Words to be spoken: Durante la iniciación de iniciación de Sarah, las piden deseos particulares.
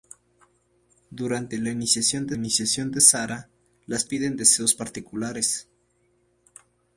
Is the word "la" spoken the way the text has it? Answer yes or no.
yes